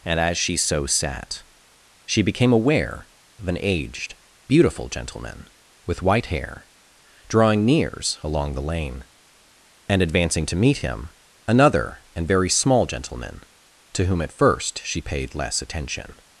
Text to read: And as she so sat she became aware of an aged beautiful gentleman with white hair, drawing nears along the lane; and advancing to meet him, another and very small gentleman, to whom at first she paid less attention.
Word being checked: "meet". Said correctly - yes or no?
yes